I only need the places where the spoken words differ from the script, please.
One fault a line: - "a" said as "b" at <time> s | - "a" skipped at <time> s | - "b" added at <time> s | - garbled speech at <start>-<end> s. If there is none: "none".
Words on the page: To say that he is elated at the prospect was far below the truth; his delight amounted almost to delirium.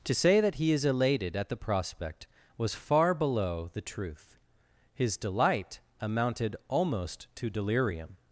none